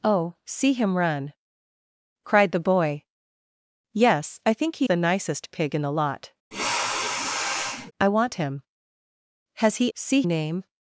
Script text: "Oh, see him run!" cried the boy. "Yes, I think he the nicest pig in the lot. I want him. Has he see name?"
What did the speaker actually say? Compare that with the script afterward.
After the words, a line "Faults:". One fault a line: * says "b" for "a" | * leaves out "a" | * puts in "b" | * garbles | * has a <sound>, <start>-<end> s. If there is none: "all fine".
"Oh, see him run!" cried the boy. "Yes, I think he the nicest pig in the lot. I want him. Has he see name?"
Faults:
* has a sniff, 6.5-7.9 s